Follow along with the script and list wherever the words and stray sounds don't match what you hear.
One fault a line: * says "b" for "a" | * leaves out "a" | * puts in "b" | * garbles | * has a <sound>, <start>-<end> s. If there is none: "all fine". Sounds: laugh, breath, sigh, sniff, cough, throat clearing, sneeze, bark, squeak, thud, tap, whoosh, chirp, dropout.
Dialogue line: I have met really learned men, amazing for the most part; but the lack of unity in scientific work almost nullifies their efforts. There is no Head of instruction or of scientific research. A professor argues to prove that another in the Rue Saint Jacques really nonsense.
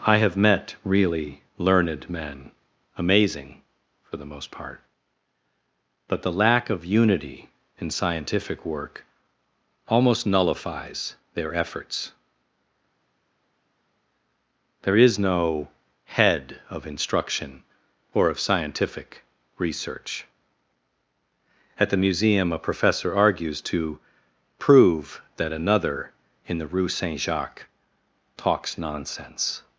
* puts in "At the Museum"
* says "talks" for "really"